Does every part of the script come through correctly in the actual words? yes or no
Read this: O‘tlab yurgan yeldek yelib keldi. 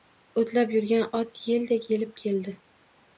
no